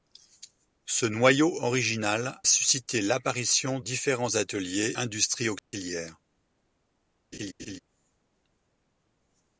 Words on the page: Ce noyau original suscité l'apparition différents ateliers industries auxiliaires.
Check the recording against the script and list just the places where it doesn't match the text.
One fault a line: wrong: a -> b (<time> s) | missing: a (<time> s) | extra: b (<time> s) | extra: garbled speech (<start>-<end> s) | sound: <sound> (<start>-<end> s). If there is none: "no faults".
sound: dropout (5.6-5.7 s)
sound: laugh (7.3-7.8 s)